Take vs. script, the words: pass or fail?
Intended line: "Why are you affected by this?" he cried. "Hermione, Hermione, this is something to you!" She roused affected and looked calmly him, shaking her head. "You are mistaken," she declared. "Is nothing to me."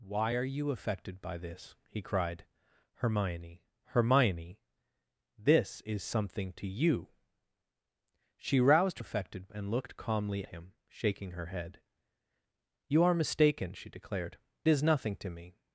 pass